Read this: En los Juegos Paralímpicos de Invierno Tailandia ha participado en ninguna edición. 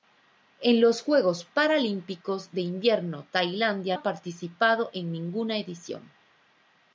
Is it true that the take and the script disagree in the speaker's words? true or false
false